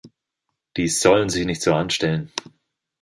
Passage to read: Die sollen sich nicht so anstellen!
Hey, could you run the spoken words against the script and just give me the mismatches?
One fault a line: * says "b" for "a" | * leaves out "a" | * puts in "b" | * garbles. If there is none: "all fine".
all fine